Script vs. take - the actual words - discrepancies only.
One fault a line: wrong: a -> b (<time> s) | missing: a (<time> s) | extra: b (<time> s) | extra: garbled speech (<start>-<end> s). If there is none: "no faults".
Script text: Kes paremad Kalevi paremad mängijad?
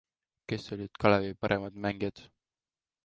wrong: paremad -> olid (0.7 s)